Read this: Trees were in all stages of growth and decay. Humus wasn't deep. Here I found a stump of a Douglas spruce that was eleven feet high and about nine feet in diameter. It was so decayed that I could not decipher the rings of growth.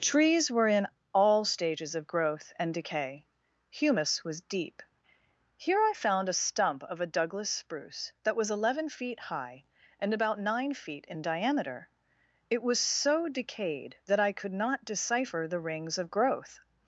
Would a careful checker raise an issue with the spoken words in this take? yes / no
yes